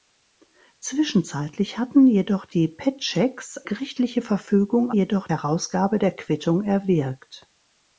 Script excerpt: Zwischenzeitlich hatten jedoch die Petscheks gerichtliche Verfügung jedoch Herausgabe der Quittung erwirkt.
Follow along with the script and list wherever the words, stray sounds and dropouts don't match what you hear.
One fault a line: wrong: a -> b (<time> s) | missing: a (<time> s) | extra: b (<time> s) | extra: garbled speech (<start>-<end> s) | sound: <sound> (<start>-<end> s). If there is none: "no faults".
no faults